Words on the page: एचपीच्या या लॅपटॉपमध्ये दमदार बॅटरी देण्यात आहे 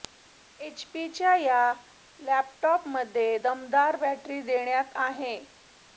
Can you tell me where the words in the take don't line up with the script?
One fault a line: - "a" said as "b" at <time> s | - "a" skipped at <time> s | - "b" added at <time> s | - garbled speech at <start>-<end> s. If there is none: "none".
none